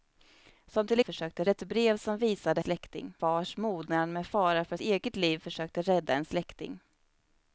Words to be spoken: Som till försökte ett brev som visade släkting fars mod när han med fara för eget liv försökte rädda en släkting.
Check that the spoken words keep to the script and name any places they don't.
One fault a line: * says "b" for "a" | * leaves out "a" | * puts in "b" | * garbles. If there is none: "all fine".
all fine